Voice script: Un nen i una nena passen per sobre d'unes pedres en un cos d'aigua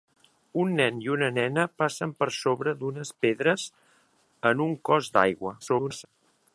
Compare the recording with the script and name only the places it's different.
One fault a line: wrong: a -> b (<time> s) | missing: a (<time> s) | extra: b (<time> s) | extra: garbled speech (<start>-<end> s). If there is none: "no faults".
extra: garbled speech (5.6-6.1 s)